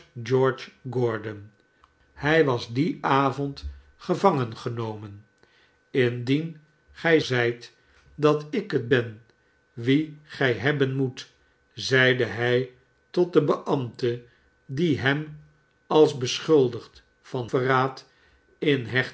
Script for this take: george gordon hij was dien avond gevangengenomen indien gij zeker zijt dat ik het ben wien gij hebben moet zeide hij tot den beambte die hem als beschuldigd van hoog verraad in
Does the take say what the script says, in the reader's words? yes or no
no